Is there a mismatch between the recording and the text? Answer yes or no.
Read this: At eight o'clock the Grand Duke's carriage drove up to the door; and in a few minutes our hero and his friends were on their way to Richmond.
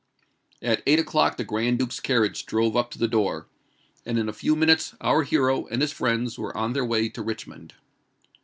no